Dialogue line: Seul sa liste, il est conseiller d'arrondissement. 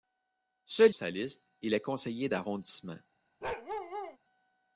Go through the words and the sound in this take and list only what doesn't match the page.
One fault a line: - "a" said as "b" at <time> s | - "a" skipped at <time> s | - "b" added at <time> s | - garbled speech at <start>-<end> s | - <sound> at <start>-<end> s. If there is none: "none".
- bark at 3.4-4.2 s